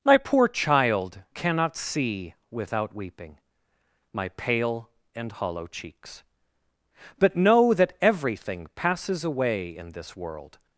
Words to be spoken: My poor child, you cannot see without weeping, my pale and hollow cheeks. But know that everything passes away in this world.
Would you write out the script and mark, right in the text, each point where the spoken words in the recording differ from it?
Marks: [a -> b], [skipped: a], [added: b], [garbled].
My poor child, [skipped: you] cannot see without weeping, my pale and hollow cheeks. But know that everything passes away in this world.